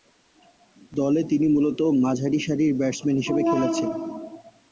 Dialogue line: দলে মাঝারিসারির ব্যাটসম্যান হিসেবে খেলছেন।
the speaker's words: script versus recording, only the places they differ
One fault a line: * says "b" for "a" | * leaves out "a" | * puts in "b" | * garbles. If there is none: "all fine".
* puts in "তিনি মূলতঃ"